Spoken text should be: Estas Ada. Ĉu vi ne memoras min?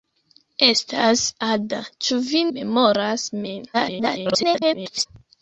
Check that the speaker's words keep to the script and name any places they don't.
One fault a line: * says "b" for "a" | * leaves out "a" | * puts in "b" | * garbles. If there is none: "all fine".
* leaves out "ne"
* garbles